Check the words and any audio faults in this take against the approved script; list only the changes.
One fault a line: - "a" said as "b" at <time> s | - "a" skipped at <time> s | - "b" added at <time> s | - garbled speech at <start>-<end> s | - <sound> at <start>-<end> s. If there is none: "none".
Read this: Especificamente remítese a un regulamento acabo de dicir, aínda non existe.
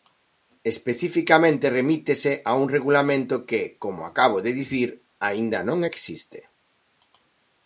- "que como" added at 3.5 s